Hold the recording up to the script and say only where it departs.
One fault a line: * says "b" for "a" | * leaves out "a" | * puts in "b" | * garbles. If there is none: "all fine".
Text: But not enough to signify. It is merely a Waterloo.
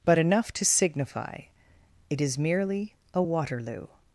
* leaves out "not"